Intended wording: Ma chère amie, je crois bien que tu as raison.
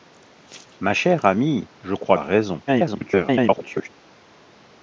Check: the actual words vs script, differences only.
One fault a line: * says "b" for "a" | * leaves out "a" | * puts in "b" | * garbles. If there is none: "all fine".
* leaves out "bien que tu"
* garbles